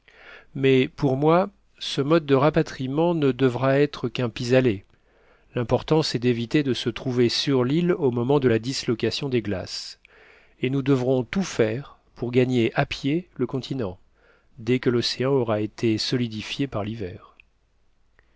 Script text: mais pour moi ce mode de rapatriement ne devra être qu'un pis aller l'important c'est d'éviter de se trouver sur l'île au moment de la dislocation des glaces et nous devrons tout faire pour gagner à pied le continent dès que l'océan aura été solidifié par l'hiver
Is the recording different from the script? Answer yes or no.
no